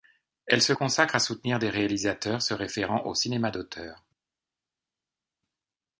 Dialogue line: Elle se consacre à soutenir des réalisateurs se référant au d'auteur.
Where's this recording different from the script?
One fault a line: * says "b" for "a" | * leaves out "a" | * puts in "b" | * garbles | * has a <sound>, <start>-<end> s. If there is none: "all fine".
* puts in "cinéma"